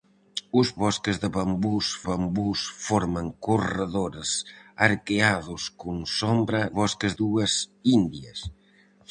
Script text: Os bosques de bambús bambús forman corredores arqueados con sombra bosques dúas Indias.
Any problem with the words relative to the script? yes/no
no